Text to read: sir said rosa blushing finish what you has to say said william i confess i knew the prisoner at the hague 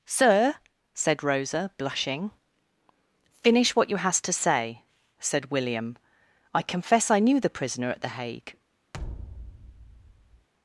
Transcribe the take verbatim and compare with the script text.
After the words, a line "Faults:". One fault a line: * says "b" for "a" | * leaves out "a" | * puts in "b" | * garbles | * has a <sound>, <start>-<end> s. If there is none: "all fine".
sir said rosa blushing finish what you has to say said william i confess i knew the prisoner at the hague
Faults:
* has a thud, 8.9-10.5 s